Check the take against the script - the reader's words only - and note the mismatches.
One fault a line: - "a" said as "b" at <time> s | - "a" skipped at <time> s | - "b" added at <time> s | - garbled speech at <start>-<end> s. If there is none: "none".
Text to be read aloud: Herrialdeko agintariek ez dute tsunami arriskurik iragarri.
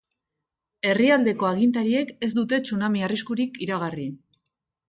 none